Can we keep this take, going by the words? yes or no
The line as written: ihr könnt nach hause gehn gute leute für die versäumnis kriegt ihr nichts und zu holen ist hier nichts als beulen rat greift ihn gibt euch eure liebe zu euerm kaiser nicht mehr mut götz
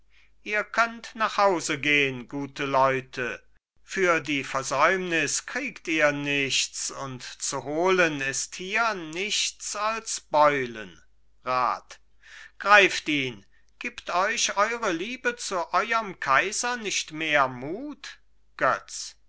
yes